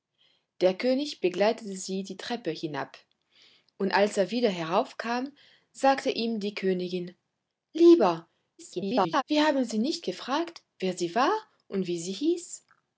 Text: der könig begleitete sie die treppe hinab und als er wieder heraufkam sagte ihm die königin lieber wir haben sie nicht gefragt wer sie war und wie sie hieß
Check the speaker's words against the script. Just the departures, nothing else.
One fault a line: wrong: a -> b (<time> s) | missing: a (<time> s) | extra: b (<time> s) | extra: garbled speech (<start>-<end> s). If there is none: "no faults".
extra: garbled speech (8.6-9.2 s)